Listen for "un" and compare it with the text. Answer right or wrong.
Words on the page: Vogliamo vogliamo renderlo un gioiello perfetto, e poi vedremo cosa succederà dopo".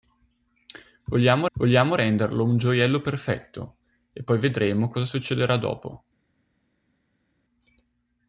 right